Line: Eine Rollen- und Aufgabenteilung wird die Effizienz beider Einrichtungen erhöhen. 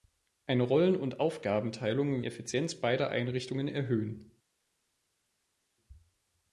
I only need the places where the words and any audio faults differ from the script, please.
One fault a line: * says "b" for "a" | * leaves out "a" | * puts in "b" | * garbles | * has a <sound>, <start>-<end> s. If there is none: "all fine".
* leaves out "wird die"